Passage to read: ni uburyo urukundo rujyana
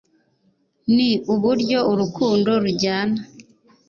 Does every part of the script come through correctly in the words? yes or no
yes